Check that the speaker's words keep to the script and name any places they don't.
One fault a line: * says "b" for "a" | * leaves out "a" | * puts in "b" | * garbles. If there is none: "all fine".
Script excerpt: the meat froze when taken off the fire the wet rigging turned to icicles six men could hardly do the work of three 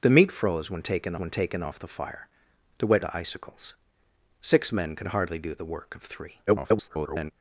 * puts in "when taken"
* leaves out "rigging turned"
* garbles